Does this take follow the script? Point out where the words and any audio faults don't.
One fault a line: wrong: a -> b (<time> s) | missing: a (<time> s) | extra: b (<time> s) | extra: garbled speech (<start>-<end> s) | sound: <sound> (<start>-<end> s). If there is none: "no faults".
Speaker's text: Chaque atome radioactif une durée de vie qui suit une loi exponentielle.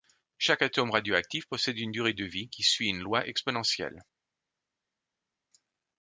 extra: possède (1.4 s)